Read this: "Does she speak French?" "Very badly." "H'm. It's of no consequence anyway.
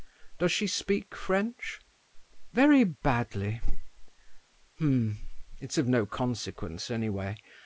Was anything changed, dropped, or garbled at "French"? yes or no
no